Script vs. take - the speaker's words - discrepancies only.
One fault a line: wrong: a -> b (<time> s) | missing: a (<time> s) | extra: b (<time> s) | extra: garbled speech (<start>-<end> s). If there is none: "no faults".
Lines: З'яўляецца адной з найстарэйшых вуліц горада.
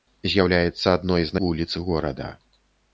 missing: найстарэйшых (1.4 s)